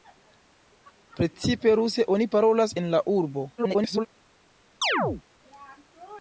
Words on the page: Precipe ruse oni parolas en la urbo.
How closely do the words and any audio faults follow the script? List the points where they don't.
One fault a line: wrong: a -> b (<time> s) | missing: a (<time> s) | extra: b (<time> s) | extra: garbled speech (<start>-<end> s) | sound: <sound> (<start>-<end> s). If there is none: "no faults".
extra: garbled speech (3.6-4.1 s)
sound: chirp (4.8-5.2 s)